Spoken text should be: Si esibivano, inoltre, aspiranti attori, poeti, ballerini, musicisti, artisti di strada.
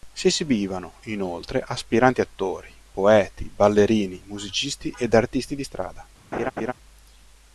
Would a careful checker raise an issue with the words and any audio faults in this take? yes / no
yes